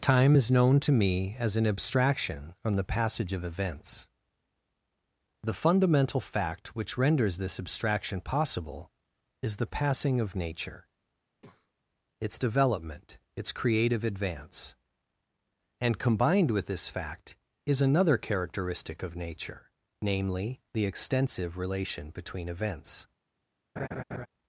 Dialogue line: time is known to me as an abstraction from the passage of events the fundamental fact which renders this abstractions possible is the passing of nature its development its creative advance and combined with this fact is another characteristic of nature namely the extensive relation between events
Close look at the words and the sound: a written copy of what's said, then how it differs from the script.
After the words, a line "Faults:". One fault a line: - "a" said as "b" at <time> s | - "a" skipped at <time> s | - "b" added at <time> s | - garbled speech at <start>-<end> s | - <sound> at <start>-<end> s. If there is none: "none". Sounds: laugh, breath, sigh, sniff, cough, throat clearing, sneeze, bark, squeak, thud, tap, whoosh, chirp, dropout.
time is known to me as an abstraction from the passage of events the fundamental fact which renders this abstraction possible is the passing of nature its development its creative advance and combined with this fact is another characteristic of nature namely the extensive relation between events
Faults:
- "abstractions" said as "abstraction" at 7.6 s
- breath at 11.3-11.8 s
- laugh at 23.8-24.3 s